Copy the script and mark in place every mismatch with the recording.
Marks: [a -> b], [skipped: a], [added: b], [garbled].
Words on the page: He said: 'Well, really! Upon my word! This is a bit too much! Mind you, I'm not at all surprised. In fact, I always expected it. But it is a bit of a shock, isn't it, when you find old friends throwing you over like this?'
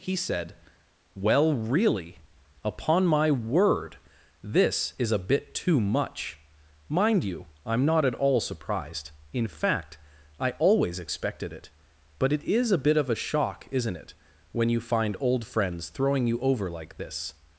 He said: 'Well, really! Upon my word! This is a bit too much! Mind you, I'm not at all surprised. In fact, I always expected it. But it is a bit of a shock, isn't it, when you find old friends throwing you over like this?'